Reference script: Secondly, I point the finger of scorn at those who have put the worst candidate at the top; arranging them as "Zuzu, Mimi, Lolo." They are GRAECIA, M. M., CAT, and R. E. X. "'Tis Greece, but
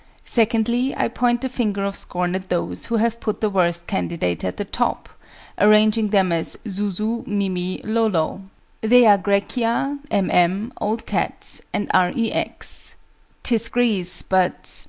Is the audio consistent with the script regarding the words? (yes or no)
no